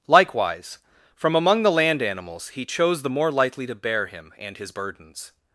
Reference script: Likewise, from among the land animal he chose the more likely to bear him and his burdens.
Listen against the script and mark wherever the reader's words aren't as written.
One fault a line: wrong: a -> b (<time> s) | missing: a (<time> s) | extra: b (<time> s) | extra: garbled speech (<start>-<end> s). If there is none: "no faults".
wrong: animal -> animals (2.0 s)